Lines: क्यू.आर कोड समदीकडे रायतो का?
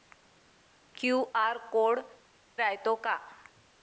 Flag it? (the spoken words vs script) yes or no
yes